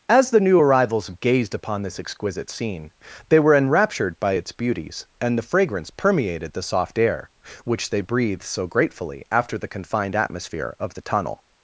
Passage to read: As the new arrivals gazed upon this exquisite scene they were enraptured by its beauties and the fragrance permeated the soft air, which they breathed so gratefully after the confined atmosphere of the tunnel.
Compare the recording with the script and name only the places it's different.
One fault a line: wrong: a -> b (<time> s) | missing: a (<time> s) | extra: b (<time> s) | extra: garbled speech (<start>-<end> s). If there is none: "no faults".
no faults